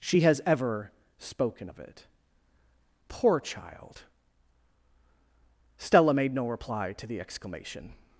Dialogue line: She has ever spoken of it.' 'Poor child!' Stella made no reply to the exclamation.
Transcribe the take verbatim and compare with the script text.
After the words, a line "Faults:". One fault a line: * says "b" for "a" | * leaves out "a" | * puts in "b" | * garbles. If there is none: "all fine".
She has ever spoken of it.' 'Poor child!' Stella made no reply to the exclamation.
Faults:
all fine